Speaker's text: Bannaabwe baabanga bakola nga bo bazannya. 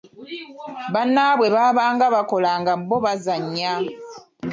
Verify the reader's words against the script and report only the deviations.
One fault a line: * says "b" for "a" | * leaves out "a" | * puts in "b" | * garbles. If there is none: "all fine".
all fine